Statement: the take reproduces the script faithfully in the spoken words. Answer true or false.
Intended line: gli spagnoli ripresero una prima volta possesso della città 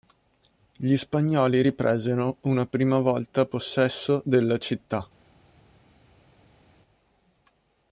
true